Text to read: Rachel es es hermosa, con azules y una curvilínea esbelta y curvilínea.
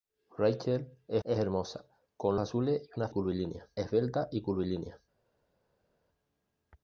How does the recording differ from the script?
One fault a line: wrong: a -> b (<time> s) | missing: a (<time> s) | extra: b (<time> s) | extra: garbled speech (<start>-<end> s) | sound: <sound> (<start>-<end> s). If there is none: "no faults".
no faults